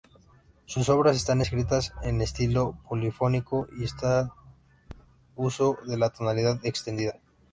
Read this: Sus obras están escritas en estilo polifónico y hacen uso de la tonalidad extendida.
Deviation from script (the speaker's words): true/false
false